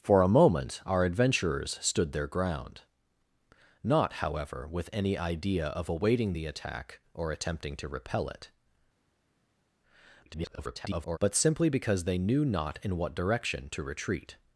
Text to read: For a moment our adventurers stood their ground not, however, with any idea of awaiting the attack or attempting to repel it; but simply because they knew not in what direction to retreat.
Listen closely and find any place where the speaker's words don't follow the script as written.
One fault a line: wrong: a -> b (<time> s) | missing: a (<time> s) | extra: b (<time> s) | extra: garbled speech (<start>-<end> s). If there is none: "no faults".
extra: garbled speech (10.2-11.2 s)